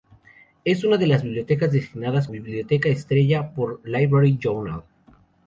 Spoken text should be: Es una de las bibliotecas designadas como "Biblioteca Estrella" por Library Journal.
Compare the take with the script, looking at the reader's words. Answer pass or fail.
fail